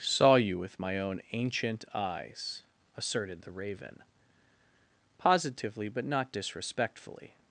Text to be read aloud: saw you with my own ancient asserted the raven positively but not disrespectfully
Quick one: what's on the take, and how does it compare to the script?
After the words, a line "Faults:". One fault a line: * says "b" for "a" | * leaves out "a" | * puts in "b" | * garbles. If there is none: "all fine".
saw you with my own ancient eyes asserted the raven positively but not disrespectfully
Faults:
* puts in "eyes"